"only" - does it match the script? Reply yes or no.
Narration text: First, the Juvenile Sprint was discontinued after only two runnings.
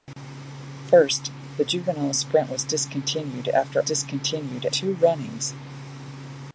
no